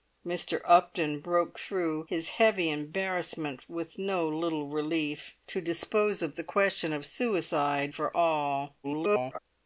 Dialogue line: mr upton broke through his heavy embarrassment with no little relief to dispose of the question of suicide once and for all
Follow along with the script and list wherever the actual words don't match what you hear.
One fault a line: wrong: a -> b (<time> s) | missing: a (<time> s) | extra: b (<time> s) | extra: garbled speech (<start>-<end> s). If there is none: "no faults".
missing: once and (7.9 s)
extra: garbled speech (8.8-9.4 s)